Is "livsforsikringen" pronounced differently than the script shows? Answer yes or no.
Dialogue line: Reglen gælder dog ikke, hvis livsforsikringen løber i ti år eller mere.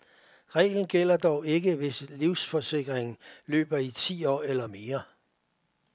no